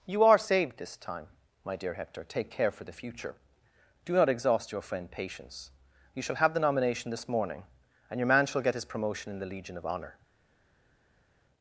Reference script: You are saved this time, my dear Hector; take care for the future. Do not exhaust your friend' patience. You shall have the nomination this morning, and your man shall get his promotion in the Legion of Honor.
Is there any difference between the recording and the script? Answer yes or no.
no